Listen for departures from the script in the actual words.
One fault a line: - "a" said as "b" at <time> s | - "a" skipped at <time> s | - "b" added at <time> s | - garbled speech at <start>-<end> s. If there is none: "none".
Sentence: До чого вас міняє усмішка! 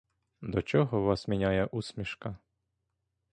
none